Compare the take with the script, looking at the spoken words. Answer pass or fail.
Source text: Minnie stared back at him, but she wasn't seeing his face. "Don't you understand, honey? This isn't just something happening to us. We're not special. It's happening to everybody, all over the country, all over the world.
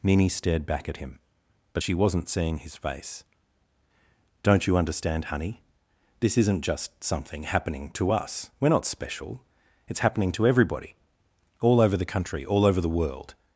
pass